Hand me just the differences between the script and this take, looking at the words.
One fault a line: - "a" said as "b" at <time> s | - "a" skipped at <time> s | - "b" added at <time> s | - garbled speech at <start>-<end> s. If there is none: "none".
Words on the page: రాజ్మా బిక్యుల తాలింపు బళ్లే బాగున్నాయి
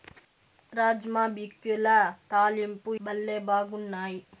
none